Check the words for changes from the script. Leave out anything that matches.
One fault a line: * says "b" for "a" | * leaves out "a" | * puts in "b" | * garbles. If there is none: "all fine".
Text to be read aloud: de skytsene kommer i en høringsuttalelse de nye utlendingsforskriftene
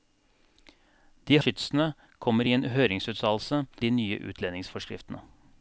all fine